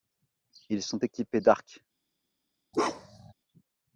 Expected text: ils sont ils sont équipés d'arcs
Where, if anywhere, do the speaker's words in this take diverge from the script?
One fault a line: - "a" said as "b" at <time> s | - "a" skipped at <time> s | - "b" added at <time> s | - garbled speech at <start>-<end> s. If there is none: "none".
- "ils sont" skipped at 1.0 s